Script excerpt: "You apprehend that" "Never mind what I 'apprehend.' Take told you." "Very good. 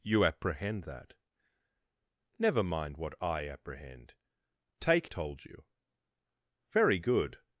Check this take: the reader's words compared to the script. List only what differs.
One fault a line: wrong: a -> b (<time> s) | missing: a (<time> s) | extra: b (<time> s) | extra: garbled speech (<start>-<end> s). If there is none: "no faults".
no faults